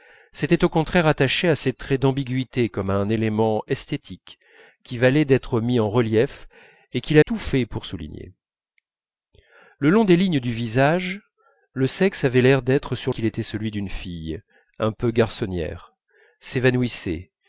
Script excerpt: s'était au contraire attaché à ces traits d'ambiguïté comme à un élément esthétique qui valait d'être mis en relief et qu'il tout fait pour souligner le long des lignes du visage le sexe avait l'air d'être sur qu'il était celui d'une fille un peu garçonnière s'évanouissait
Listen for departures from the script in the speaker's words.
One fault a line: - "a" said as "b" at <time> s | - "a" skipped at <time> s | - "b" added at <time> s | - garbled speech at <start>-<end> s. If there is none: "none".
none